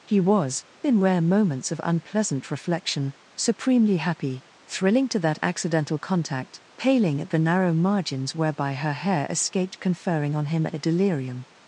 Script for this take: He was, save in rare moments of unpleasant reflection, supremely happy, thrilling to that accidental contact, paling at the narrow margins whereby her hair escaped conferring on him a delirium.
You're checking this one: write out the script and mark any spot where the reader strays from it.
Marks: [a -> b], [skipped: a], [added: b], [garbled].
He was, [skipped: save] in rare moments of unpleasant reflection, supremely happy, thrilling to that accidental contact, paling at the narrow margins whereby her hair escaped conferring on him a delirium.